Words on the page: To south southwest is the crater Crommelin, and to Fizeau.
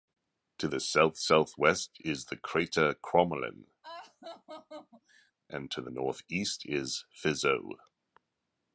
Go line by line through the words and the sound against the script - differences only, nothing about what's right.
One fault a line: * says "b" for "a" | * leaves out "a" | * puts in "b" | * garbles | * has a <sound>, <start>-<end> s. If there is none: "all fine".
* puts in "the"
* has a laugh, 3.8-5.3 s
* puts in "the northeast is"